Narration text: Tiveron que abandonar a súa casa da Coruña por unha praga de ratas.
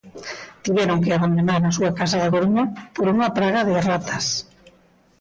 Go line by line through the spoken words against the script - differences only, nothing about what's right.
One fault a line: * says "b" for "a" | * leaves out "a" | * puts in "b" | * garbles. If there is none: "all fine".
all fine